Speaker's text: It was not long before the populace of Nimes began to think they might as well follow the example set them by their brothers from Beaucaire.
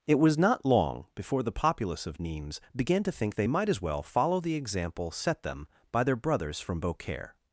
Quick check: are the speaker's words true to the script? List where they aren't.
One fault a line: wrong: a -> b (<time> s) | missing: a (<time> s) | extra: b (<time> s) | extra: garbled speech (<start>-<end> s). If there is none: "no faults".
no faults